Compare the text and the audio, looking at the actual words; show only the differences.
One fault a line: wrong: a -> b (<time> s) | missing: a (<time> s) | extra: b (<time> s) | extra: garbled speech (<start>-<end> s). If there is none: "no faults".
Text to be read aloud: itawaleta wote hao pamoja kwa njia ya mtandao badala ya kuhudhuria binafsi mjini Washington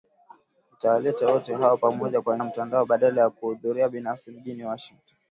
missing: njia (2.4 s)